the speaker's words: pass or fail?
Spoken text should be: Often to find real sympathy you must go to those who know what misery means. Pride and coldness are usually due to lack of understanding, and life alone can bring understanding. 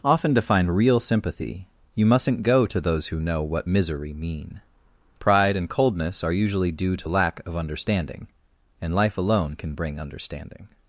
fail